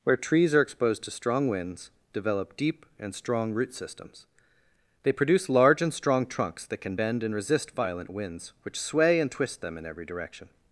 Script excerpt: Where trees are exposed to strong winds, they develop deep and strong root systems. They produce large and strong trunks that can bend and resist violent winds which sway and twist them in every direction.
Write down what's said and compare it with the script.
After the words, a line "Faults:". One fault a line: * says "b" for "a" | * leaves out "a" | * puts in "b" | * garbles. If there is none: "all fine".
Where trees are exposed to strong winds, develop deep and strong root systems. They produce large and strong trunks that can bend and resist violent winds which sway and twist them in every direction.
Faults:
* leaves out "they"